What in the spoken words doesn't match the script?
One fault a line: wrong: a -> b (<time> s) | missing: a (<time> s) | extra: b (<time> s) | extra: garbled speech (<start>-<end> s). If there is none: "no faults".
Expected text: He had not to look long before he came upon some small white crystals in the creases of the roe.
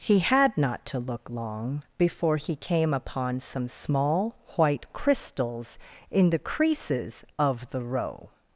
no faults